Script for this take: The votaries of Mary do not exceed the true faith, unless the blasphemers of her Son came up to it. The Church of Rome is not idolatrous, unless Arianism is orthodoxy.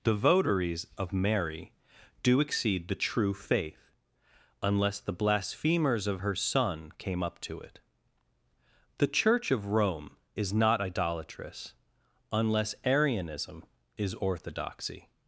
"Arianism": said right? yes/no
yes